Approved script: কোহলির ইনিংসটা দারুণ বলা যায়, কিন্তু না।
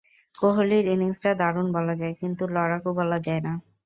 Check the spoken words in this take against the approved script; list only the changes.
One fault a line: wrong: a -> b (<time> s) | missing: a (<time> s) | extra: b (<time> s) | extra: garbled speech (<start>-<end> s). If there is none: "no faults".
extra: লড়াকু বলা যায় (2.5 s)